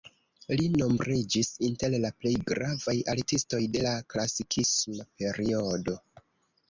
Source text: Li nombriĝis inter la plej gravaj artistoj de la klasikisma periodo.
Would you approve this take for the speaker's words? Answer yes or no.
yes